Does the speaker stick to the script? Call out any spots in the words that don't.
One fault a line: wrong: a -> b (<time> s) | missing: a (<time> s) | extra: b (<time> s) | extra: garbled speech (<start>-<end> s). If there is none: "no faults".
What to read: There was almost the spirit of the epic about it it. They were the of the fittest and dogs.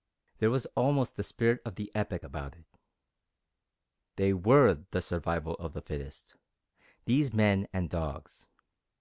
missing: it (2.7 s)
extra: survival (5.0 s)
extra: these men (7.0 s)